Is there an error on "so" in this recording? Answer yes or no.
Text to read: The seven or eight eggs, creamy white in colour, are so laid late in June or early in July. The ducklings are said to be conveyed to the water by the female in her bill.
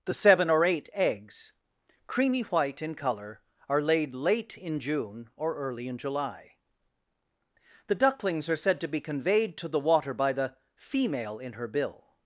yes